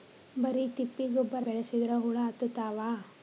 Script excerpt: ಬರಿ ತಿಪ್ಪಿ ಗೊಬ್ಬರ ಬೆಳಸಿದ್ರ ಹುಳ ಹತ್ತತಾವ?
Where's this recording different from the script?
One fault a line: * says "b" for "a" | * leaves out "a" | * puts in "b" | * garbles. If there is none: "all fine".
all fine